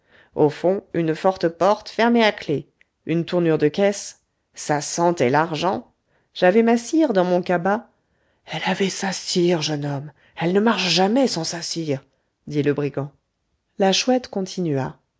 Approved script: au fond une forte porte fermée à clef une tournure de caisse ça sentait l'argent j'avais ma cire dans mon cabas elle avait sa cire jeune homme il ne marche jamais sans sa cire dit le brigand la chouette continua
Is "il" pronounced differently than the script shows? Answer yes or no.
yes